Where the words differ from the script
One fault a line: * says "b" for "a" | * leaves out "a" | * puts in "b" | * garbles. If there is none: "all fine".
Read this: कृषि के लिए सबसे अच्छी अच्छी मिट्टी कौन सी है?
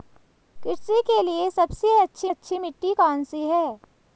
all fine